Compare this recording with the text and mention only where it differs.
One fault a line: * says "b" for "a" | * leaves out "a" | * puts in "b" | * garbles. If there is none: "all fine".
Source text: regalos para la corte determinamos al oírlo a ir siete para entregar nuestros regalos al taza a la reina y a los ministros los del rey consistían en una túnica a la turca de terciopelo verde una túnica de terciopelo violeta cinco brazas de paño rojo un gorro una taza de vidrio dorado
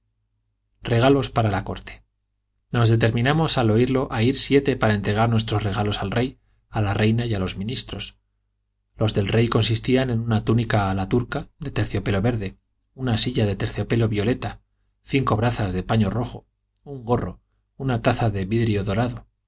* puts in "nos"
* says "rey" for "taza"
* says "silla" for "túnica"